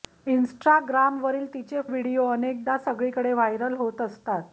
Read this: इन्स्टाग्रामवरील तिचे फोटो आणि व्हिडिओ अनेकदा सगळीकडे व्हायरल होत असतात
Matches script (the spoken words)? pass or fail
fail